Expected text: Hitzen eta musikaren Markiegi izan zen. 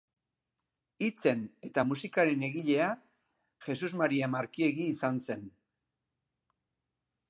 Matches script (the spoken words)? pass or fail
fail